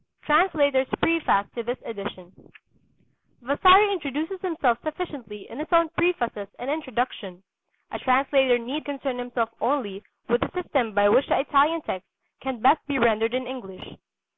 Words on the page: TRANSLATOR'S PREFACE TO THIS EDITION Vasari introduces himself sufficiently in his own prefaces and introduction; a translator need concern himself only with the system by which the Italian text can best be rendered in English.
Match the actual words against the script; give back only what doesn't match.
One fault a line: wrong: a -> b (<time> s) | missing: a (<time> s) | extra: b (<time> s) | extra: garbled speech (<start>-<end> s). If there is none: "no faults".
no faults